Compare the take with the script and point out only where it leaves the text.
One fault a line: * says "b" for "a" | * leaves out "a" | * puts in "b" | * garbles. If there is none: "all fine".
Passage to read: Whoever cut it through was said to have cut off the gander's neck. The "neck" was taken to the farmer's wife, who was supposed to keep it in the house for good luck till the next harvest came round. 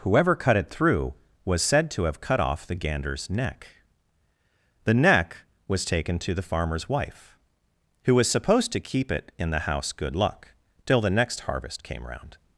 * leaves out "for"